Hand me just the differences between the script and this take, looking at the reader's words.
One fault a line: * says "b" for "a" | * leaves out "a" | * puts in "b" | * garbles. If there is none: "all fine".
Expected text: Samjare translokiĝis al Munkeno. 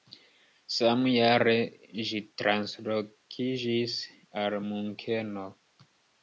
* puts in "ĝi"